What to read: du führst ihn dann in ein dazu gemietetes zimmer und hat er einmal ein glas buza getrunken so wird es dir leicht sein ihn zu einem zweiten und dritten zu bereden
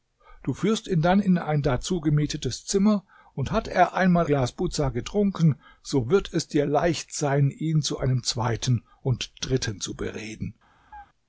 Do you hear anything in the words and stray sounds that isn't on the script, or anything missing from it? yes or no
yes